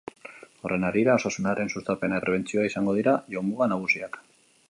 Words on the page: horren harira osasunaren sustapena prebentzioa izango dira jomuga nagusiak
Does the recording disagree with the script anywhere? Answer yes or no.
no